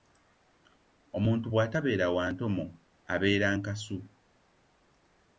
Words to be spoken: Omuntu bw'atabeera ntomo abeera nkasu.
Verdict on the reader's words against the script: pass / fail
fail